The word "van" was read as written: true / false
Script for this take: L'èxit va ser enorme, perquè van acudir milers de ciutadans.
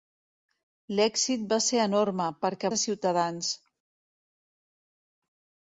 false